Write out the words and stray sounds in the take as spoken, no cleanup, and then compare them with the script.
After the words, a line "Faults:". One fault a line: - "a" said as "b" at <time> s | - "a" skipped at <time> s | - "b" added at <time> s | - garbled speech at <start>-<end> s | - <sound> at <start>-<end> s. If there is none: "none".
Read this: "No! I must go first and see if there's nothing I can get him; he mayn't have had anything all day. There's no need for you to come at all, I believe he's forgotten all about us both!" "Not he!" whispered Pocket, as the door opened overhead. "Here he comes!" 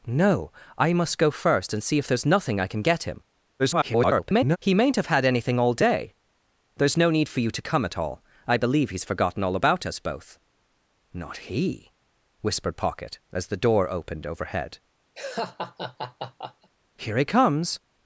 "No! I must go first and see if there's nothing I can get him; [garbled] he mayn't have had anything all day. There's no need for you to come at all, I believe he's forgotten all about us both!" "Not he!" whispered Pocket, as the door opened overhead. "Here he comes!"
Faults:
- garbled speech at 3.6-4.6 s
- laugh at 15.1-16.7 s